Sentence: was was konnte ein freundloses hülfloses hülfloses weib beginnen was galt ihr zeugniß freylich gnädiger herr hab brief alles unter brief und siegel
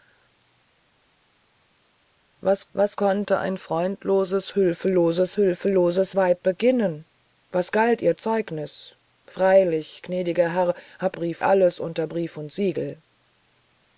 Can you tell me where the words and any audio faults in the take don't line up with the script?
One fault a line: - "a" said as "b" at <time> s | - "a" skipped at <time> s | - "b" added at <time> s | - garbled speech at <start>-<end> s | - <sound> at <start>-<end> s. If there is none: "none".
none